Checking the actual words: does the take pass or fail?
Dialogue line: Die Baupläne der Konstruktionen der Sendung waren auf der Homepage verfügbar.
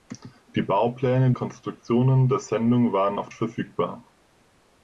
fail